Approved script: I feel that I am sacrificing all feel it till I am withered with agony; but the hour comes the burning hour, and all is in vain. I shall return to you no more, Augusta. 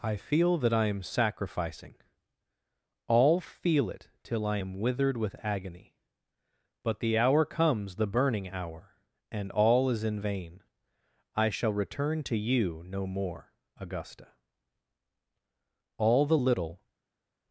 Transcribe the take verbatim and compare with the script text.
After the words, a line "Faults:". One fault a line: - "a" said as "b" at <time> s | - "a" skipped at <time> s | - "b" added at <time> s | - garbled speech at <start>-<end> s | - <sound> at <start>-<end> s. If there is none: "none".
I feel that I am sacrificing all feel it till I am withered with agony; but the hour comes the burning hour, and all is in vain. I shall return to you no more, Augusta. All the little
Faults:
- "All the little" added at 16.0 s